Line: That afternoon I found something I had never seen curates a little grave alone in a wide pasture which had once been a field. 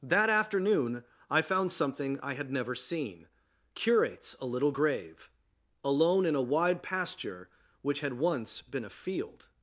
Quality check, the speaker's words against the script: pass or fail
pass